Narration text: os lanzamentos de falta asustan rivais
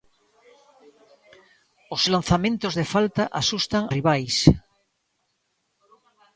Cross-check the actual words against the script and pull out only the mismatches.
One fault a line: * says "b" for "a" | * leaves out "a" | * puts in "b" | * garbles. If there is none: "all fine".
all fine